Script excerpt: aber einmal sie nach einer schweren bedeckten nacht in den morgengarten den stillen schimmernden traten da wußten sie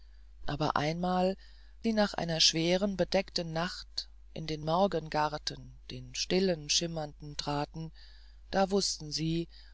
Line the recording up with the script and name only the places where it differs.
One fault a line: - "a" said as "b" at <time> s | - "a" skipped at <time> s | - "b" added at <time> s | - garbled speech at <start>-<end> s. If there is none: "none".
none